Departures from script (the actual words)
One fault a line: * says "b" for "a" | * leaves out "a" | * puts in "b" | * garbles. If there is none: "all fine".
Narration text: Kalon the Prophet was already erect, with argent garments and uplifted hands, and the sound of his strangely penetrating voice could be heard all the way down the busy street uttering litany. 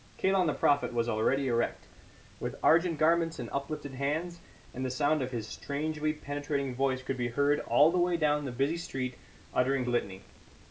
all fine